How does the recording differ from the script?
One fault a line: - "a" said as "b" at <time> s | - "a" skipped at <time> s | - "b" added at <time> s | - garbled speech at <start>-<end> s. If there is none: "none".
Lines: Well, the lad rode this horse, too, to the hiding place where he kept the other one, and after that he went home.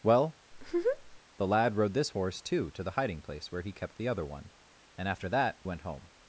- "he" skipped at 5.6 s